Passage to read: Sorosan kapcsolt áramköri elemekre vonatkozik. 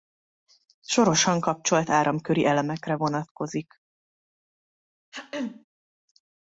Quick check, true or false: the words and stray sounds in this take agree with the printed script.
false